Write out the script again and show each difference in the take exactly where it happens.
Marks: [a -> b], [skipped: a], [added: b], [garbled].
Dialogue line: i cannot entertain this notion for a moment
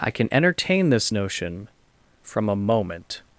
i [cannot -> can] entertain this notion [for -> from] a moment